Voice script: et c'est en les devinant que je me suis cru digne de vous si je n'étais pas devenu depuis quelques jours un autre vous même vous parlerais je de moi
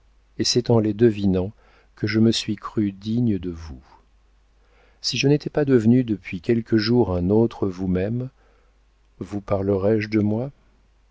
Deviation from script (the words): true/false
false